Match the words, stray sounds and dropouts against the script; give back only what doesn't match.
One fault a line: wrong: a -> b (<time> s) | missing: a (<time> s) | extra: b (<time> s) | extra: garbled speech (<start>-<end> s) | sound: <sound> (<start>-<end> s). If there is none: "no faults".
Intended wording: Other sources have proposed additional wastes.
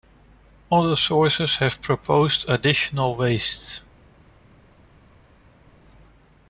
no faults